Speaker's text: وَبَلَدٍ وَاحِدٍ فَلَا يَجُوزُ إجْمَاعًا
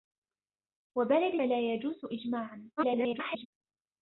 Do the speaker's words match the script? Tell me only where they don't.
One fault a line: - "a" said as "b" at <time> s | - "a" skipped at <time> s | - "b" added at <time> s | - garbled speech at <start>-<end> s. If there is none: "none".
- "وَاحِدٍ" skipped at 1.4 s
- garbled speech at 2.8-3.5 s